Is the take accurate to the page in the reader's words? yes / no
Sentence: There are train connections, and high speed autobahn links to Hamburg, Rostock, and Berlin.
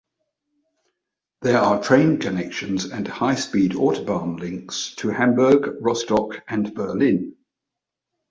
yes